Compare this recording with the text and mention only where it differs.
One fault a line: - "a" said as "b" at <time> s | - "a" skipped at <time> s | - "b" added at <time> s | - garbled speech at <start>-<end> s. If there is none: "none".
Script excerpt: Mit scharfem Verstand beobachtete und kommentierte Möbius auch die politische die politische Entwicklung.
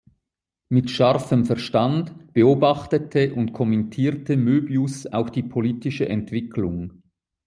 - "die politische" skipped at 6.1 s